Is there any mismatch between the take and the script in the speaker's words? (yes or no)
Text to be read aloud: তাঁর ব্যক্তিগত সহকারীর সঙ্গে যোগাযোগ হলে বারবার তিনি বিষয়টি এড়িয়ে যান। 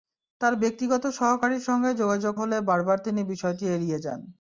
no